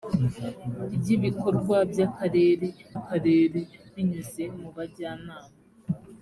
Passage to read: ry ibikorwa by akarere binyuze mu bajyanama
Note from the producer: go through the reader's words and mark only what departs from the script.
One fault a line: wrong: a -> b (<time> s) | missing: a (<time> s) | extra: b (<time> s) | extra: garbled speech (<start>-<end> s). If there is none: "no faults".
extra: akarere (3.0 s)